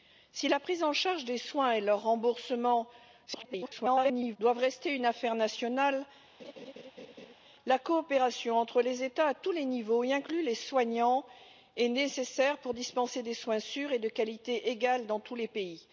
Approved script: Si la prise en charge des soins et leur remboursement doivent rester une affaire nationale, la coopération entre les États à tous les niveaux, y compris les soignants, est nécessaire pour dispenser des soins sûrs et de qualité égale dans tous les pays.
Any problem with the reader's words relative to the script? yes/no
yes